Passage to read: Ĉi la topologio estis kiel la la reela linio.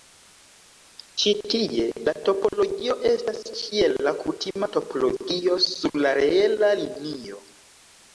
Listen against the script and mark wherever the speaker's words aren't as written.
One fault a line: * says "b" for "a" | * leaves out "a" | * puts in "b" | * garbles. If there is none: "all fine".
* puts in "tie"
* says "estas" for "estis"
* puts in "kutima topologio sur"